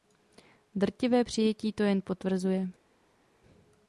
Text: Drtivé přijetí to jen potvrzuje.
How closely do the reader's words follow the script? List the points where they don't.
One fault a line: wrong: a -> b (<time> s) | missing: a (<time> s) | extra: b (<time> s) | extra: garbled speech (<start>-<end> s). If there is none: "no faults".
no faults